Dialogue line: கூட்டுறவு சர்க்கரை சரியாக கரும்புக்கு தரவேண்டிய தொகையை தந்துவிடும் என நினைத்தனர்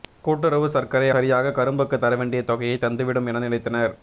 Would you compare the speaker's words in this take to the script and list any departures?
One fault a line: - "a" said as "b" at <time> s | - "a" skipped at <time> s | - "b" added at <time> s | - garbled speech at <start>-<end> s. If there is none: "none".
none